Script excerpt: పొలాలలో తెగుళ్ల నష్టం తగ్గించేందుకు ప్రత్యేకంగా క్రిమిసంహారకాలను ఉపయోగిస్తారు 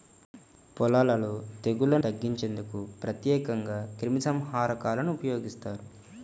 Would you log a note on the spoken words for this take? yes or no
yes